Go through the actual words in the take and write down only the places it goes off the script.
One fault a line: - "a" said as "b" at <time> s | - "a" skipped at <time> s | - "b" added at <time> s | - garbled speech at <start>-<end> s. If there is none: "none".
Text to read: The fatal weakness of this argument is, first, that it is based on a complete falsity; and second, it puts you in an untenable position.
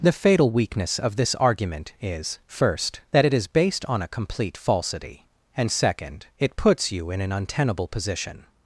none